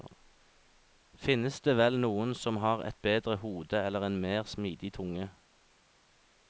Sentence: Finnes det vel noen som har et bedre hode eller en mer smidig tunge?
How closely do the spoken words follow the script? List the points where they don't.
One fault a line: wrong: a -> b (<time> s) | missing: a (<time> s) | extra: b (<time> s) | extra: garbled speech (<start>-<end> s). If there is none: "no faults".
no faults